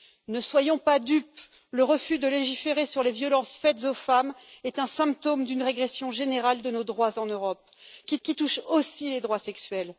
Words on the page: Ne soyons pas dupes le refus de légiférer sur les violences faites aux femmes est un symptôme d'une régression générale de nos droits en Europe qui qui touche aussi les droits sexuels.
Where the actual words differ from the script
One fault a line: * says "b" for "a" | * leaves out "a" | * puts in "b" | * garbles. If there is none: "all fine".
all fine